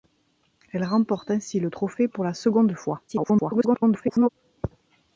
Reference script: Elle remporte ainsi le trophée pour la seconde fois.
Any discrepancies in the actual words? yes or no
yes